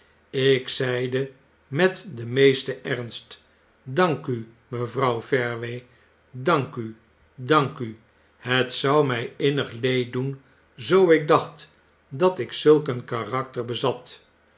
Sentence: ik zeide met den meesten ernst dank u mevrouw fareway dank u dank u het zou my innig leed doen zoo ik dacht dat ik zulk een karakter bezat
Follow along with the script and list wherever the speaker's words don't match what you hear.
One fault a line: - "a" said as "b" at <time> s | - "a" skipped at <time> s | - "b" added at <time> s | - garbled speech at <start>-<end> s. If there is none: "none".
none